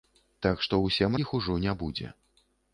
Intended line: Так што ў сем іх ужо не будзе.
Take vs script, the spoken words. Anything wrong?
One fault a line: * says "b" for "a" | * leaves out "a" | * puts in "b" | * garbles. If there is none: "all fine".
all fine